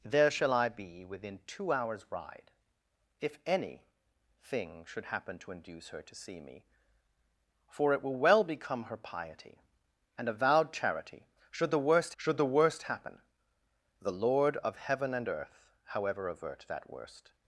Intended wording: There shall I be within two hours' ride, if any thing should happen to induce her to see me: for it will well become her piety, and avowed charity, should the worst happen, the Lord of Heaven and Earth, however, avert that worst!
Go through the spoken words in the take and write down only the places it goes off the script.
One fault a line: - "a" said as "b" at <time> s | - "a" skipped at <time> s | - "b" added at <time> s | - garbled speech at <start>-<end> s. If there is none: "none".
- "should the worst" added at 12.2 s